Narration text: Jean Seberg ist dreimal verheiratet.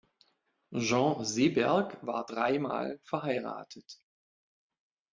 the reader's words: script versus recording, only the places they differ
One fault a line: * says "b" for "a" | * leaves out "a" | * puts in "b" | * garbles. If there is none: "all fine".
* says "war" for "ist"